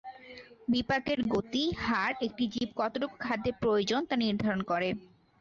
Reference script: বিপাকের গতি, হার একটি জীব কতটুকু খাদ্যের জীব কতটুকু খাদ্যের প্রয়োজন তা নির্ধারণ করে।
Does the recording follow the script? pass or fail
fail